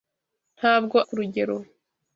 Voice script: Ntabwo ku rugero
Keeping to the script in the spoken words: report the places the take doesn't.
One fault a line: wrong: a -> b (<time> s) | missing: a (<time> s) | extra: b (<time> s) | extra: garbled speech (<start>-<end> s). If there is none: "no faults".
no faults